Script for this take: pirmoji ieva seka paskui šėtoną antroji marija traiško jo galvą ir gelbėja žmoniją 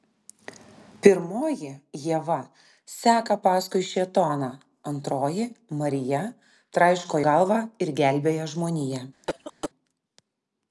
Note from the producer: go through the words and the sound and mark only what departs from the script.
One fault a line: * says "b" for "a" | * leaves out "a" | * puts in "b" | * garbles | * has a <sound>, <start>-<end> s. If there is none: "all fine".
* leaves out "jo"
* has a cough, 9.2-9.7 s